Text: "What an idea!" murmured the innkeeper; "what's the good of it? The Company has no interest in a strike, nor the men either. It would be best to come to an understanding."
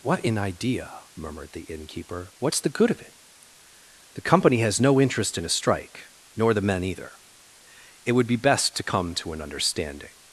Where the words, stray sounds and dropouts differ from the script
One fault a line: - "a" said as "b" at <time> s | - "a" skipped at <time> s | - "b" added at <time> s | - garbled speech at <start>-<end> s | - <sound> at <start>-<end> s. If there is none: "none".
none